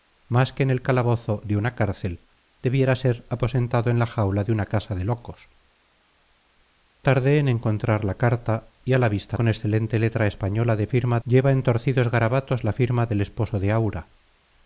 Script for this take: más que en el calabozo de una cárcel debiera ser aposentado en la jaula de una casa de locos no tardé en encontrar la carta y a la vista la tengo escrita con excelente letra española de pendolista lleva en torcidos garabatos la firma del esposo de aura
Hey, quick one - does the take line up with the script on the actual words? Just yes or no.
no